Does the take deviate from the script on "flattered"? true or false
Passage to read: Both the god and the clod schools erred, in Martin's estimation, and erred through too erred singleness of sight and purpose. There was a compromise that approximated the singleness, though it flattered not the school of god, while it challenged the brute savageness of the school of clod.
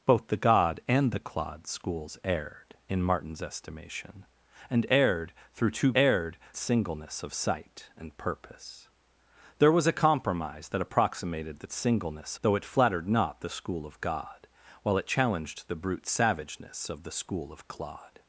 false